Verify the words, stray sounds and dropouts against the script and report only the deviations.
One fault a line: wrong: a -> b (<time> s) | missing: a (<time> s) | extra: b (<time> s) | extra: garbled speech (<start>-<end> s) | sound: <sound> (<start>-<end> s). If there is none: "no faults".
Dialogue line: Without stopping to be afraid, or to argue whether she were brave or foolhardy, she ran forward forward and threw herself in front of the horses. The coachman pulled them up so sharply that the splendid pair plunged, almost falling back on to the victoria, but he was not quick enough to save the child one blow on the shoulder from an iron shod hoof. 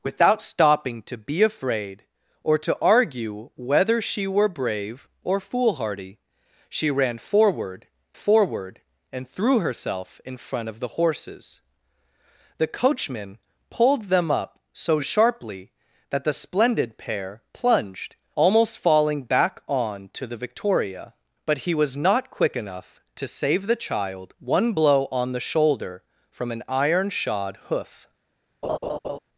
sound: laugh (28.6-29.2 s)